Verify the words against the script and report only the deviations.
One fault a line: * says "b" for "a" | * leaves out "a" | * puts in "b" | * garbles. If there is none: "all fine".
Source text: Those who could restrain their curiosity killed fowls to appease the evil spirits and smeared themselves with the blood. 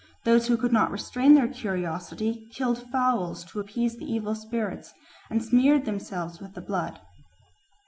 * puts in "not"